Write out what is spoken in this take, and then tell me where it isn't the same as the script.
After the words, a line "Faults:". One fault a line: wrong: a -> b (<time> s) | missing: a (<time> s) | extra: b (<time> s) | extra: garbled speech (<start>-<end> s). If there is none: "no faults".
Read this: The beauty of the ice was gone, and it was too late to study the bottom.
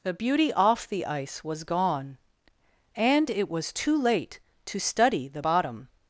The beauty off the ice was gone, and it was too late to study the bottom.
Faults:
wrong: of -> off (0.5 s)